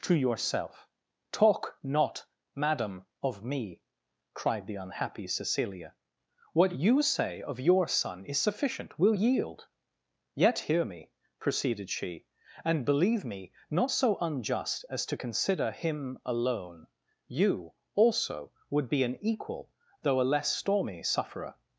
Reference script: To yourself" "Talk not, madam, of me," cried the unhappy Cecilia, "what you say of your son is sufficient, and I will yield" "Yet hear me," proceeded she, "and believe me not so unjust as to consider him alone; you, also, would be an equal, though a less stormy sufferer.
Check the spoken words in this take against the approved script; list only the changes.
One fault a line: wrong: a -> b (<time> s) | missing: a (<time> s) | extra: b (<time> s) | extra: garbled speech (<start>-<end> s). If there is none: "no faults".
missing: and I (9.0 s)